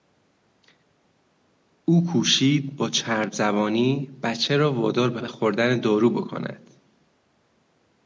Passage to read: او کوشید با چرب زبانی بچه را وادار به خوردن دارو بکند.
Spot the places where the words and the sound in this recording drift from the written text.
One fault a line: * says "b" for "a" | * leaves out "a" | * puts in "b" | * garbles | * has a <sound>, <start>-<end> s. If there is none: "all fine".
* puts in "به"